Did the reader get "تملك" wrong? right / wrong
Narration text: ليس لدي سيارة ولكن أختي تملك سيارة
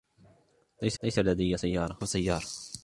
wrong